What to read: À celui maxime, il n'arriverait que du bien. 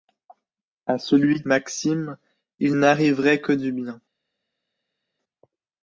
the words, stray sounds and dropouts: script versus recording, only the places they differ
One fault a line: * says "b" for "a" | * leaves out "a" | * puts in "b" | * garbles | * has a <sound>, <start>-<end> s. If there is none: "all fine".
all fine